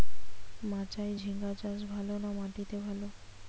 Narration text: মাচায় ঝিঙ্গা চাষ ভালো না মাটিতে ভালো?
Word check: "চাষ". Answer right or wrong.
right